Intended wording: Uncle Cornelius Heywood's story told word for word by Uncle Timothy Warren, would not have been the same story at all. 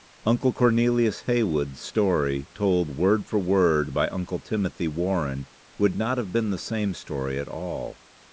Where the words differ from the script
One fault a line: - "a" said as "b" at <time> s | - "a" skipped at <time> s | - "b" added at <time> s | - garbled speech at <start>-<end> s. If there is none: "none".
none